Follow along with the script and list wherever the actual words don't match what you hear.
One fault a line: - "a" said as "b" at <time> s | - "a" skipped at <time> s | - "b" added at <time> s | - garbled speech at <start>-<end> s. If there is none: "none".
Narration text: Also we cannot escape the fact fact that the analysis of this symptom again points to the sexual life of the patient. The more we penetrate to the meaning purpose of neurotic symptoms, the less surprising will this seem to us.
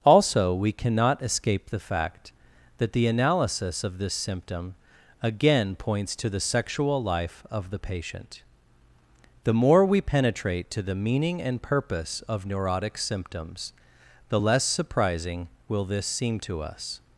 - "fact" skipped at 2.3 s
- "and" added at 11.4 s